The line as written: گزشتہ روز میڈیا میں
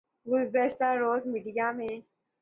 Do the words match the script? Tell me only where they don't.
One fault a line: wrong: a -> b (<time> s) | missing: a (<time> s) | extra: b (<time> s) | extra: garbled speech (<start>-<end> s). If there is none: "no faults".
no faults